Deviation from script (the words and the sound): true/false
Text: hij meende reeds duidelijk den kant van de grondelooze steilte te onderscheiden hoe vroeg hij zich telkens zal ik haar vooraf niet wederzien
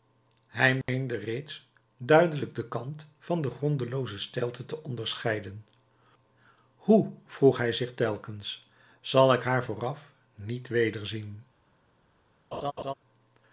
true